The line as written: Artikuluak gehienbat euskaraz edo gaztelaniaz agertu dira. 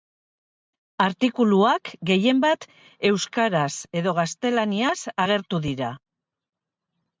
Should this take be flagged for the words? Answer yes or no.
no